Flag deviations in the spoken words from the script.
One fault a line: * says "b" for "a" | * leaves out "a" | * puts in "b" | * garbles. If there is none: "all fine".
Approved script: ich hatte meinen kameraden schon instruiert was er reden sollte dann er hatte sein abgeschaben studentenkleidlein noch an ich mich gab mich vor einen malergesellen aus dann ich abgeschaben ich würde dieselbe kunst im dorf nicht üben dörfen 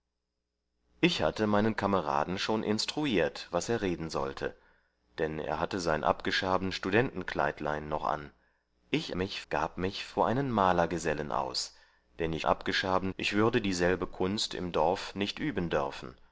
all fine